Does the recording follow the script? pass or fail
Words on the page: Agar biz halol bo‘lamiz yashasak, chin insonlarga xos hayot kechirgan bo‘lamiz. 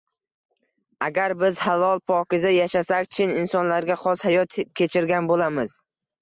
fail